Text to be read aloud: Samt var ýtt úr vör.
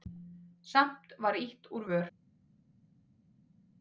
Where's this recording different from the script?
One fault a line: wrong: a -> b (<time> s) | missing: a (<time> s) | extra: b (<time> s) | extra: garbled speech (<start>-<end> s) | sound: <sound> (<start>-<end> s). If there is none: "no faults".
no faults